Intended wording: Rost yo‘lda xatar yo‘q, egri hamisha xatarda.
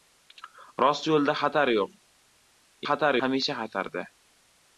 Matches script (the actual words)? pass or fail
fail